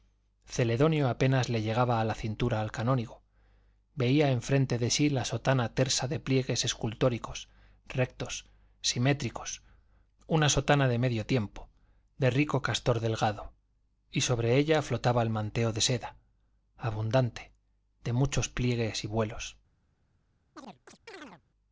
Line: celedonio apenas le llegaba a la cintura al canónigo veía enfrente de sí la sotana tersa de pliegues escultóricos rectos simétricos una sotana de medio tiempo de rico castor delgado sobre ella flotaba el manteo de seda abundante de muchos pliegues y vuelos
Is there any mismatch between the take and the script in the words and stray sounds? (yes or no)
yes